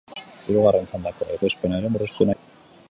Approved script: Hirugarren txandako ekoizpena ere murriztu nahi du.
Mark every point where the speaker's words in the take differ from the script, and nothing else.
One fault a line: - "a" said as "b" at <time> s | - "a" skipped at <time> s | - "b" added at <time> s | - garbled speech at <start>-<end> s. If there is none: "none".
- "nahi" skipped at 2.3 s